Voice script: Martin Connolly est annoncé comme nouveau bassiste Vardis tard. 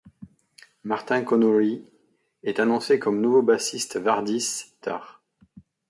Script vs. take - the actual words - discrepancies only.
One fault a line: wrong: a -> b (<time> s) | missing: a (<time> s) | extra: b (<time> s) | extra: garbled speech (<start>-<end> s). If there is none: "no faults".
no faults